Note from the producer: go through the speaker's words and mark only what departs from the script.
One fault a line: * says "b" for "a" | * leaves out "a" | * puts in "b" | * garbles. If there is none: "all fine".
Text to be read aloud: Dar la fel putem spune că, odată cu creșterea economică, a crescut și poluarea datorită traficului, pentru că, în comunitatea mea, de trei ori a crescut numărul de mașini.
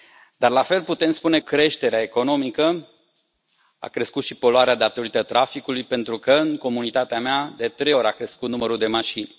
* leaves out "că odată cu"